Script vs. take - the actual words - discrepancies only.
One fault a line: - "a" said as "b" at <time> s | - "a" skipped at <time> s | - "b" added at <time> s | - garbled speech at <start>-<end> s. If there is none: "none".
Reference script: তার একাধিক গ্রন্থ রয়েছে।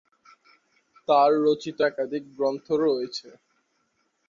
- "রচিত" added at 1.4 s